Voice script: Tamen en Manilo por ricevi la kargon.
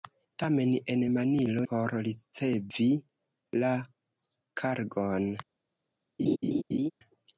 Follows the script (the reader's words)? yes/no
yes